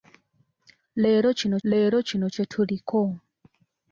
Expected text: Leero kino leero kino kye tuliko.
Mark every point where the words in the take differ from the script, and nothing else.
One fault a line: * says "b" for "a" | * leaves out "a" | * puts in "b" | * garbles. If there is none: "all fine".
all fine